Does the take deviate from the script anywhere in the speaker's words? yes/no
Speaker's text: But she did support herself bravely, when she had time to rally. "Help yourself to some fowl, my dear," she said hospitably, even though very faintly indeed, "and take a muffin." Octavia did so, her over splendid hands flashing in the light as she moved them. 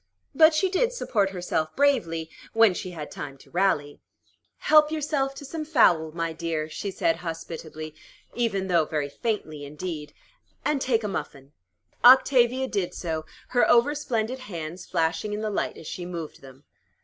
no